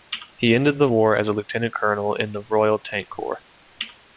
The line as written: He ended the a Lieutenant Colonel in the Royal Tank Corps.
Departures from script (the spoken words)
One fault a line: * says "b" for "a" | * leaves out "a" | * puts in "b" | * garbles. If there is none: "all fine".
* puts in "war as"